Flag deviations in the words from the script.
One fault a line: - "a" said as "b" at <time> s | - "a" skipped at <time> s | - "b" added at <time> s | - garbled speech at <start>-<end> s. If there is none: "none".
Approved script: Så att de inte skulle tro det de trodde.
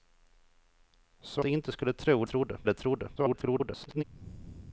- "att" skipped at 1.4 s
- "det" said as "trodde" at 2.2 s
- garbled speech at 3.2-4.0 s